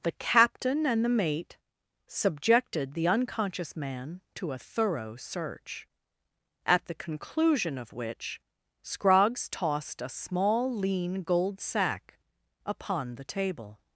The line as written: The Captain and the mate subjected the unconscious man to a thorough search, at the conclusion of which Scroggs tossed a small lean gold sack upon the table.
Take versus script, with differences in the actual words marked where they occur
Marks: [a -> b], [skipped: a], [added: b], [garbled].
The Captain and the mate subjected the unconscious man to a thorough search, at the conclusion of which Scroggs tossed a small lean gold sack upon the table.